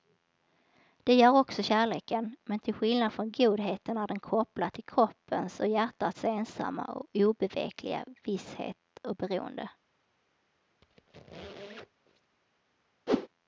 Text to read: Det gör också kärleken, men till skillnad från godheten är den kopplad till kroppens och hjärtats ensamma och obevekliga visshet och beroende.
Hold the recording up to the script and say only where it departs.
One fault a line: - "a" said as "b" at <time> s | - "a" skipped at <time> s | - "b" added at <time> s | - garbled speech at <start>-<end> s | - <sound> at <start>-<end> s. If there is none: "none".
- squeak at 10.8-12.4 s
- whoosh at 13.1-13.3 s